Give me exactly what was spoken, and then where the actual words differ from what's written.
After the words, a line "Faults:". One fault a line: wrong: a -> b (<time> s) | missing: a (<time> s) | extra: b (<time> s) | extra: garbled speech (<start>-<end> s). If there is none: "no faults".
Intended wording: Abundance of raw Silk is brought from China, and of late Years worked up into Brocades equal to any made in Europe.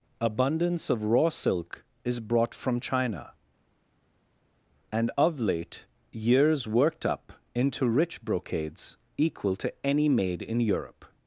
Abundance of raw Silk is brought from China, and of late Years worked up into rich Brocades equal to any made in Europe.
Faults:
extra: rich (7.9 s)